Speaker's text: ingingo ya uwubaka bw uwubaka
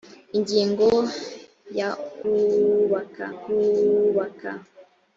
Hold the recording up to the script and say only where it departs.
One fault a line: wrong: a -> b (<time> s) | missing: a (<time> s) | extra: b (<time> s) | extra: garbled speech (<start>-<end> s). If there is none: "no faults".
no faults